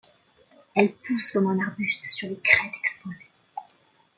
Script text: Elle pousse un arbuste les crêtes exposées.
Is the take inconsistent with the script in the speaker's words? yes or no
yes